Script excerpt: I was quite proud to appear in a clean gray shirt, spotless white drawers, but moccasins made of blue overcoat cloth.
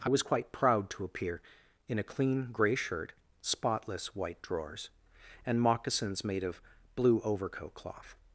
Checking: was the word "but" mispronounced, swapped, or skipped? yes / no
yes